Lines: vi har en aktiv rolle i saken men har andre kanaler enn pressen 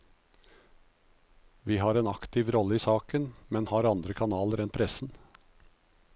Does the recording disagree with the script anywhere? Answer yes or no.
no